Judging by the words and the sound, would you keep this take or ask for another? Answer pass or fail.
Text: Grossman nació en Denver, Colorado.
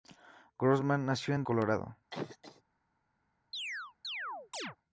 fail